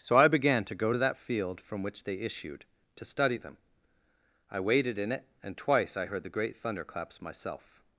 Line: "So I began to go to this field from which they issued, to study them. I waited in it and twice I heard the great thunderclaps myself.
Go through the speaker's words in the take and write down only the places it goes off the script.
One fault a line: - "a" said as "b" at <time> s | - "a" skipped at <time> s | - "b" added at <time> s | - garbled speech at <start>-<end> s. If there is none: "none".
- "this" said as "that" at 1.0 s